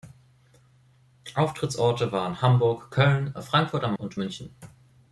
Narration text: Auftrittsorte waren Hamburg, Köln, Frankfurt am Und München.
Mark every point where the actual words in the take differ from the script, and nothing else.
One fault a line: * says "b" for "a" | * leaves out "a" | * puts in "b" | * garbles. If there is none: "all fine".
all fine